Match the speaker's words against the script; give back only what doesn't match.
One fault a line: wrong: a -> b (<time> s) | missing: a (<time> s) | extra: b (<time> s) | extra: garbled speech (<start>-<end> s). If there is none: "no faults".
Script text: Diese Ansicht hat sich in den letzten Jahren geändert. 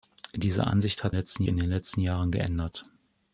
wrong: sich -> letzten (1.1 s)